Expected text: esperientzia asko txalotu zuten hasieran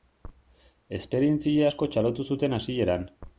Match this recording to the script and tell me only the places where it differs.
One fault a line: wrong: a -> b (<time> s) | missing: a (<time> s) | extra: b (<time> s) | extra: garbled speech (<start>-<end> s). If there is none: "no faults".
no faults